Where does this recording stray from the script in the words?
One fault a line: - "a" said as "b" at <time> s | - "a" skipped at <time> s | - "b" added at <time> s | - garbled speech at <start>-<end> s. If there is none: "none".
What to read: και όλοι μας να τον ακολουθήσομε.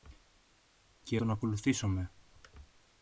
- "όλοι μας να" skipped at 1.2 s